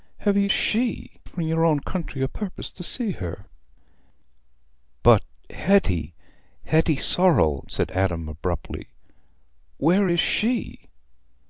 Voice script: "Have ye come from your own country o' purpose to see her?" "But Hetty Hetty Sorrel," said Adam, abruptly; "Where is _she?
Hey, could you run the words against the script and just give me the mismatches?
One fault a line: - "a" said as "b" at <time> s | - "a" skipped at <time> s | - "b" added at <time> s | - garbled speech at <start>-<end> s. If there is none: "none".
- "come" said as "she" at 0.5 s